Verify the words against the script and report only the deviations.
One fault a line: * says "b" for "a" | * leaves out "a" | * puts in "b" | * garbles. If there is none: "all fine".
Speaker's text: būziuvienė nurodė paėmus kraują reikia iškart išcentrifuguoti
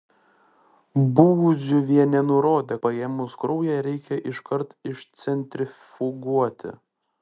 all fine